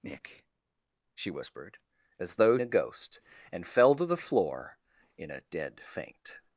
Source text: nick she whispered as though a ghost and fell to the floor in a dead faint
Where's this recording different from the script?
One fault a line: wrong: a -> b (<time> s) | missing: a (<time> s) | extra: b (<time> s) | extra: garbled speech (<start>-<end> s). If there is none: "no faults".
no faults